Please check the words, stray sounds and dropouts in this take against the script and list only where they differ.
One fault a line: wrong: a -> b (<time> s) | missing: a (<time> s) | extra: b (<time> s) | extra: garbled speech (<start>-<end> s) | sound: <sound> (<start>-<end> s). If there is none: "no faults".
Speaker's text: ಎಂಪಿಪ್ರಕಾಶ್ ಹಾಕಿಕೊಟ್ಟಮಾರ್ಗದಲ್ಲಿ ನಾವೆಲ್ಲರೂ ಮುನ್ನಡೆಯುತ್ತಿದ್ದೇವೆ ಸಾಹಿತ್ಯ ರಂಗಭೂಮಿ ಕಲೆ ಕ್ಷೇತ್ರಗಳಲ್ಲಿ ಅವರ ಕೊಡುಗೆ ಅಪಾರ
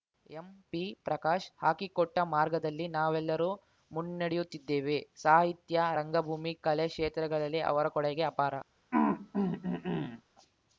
sound: throat clearing (8.9-10.2 s)